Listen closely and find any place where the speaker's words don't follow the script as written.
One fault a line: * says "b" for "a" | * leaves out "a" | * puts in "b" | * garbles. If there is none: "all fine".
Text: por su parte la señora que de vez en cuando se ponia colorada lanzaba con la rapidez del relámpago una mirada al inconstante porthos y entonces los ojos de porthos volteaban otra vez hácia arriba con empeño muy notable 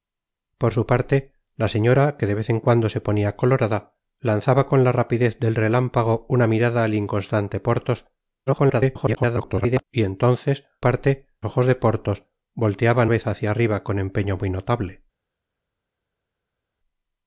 * garbles
* says "parte" for "los"
* leaves out "otra"